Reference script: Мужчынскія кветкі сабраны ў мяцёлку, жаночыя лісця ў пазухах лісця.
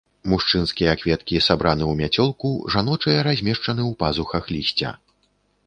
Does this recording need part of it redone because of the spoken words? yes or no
yes